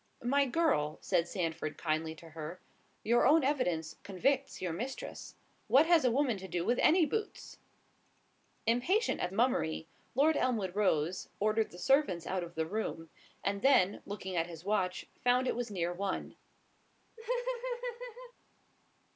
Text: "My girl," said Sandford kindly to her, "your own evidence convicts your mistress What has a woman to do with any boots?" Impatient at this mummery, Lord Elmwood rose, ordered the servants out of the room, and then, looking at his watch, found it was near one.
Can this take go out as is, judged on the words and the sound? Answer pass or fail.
fail